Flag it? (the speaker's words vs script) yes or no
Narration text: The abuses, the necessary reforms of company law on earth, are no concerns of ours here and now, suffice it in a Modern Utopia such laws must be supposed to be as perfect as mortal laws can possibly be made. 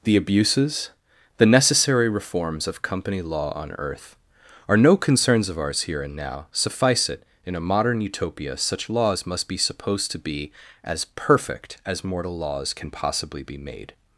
no